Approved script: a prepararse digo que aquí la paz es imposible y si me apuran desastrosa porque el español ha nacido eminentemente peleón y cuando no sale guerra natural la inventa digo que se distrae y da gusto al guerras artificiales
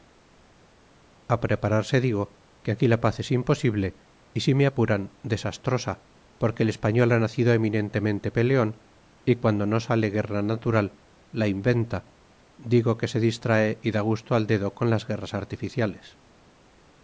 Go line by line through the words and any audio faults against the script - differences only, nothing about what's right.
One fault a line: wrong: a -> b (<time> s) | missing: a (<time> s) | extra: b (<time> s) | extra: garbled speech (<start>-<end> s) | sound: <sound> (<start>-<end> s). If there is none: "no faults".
extra: dedo con las (14.5 s)